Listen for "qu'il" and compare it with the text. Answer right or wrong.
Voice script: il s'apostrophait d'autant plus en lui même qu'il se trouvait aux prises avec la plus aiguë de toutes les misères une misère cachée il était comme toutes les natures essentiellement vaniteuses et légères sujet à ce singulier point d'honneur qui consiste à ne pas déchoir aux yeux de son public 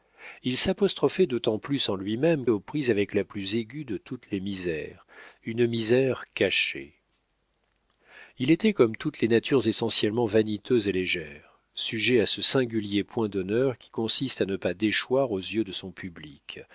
wrong